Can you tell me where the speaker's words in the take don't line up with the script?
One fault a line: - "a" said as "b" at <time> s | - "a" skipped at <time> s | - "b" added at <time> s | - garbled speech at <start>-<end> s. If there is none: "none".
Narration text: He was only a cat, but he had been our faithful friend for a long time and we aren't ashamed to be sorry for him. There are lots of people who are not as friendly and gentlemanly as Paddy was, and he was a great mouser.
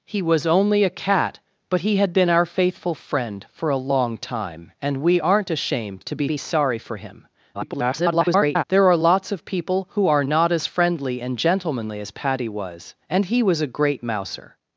- "be" added at 6.2 s
- garbled speech at 7.5-8.6 s